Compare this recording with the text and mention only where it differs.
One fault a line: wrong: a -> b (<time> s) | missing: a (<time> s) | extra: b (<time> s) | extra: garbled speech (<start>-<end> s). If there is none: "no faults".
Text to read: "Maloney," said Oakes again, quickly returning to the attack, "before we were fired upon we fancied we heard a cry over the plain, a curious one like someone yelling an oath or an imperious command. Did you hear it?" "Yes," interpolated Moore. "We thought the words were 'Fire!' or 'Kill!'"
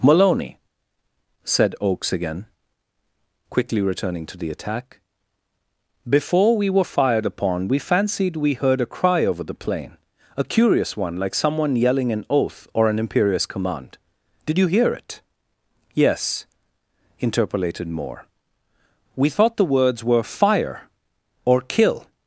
no faults